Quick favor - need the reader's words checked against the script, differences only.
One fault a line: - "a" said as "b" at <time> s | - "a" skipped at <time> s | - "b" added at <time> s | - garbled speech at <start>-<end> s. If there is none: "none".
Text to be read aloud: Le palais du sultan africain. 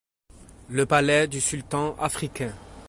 none